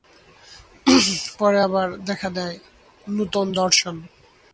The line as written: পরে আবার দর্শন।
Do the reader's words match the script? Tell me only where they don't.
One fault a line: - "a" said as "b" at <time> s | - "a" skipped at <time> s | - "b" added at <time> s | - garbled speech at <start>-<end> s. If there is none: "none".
- "দেখা দেয় নূতন" added at 2.0 s